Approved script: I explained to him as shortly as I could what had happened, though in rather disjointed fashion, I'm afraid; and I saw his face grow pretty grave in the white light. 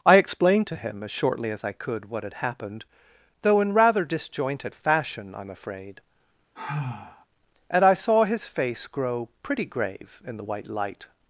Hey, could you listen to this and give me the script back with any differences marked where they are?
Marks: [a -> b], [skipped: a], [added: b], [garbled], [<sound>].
I explained to him as shortly as I could what had happened, though in rather disjointed fashion, I'm afraid; [sigh] and I saw his face grow pretty grave in the white light.